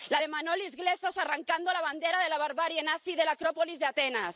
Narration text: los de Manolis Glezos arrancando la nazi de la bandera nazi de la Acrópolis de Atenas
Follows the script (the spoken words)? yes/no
no